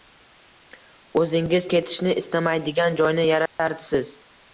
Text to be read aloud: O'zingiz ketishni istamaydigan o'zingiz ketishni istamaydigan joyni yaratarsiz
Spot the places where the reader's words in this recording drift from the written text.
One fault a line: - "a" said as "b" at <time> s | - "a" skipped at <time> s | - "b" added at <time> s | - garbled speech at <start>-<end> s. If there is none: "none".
- "o'zingiz ketishni istamaydigan" skipped at 3.0 s